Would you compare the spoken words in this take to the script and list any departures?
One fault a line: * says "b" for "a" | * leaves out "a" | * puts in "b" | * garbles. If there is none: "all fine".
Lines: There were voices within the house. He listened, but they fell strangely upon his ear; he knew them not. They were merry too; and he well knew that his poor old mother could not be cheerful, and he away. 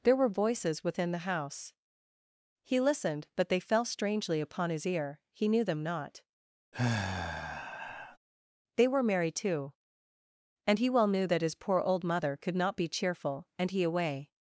all fine